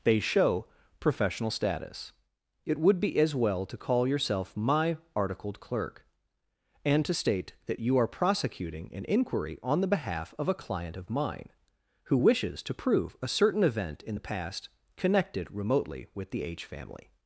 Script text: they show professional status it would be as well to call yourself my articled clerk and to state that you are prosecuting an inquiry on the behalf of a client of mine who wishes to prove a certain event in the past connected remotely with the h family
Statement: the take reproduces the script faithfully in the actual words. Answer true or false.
true